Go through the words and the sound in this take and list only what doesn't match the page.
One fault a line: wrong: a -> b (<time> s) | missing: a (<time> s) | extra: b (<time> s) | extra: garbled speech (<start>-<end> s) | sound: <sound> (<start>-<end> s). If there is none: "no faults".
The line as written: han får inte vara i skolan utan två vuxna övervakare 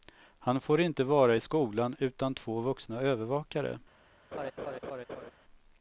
sound: laugh (4.3-5.3 s)